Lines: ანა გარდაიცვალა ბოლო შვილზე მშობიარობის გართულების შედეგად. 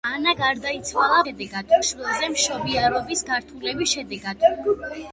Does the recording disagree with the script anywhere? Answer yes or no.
yes